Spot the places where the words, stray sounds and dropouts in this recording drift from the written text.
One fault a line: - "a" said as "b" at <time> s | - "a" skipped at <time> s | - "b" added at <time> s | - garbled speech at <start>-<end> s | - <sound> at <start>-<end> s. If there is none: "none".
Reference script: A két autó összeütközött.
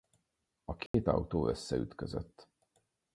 - dropout at 0.9-0.9 s